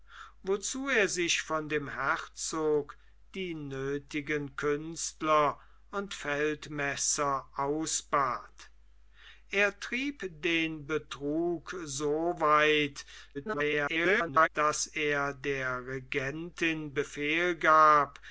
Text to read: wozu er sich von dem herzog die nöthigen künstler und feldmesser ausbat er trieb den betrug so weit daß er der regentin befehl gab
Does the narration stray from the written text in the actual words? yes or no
yes